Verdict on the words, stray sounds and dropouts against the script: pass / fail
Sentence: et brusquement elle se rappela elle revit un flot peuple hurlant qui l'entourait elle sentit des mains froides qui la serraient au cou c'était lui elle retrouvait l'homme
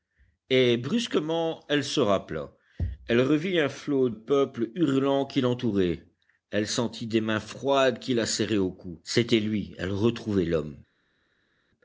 pass